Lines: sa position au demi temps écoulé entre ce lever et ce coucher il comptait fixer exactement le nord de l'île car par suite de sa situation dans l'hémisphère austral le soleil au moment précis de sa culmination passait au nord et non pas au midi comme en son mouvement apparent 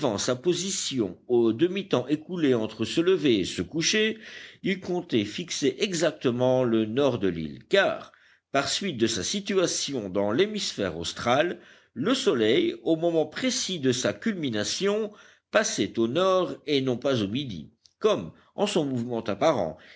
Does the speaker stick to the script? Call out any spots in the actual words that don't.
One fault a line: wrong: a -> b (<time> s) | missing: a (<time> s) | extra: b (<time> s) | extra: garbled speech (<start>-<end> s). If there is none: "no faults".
no faults